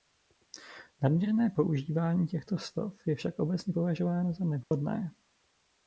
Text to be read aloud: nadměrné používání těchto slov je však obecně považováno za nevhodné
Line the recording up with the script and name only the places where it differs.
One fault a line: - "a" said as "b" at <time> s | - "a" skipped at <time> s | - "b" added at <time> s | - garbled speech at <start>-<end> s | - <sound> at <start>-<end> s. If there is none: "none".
- dropout at 4.6-4.7 s